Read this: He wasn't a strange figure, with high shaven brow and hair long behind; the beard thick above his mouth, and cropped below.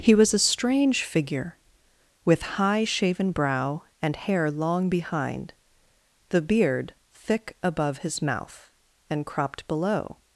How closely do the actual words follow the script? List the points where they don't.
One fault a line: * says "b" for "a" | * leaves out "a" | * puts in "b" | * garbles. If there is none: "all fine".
* says "was" for "wasn't"